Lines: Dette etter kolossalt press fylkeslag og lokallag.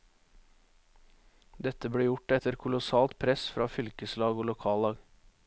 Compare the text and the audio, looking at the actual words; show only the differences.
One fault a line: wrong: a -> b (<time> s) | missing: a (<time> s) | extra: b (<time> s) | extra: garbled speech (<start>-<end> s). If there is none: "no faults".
extra: ble gjort (1.9 s)
extra: fra (3.5 s)